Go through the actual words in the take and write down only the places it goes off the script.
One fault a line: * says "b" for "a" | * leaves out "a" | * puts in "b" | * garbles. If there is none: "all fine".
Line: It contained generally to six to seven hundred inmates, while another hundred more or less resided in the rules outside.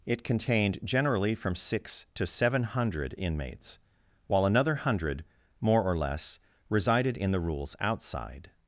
* says "from" for "to"